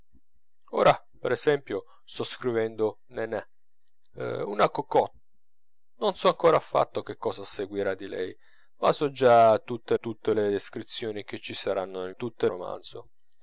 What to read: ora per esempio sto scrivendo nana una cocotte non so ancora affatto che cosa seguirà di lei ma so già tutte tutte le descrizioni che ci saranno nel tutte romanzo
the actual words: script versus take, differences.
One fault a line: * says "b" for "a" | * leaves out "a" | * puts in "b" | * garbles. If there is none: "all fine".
all fine